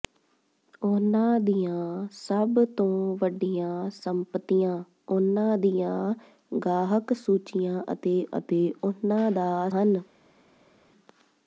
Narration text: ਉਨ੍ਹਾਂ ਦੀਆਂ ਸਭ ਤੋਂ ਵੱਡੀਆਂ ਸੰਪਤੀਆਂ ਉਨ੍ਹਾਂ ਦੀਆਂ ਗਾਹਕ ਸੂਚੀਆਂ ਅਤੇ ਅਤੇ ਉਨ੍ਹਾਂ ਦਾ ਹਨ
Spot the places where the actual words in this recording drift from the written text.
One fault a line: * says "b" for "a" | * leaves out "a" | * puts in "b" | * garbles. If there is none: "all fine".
all fine